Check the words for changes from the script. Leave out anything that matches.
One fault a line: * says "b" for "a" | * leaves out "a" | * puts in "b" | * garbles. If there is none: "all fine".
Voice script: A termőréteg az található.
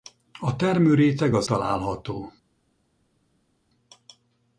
all fine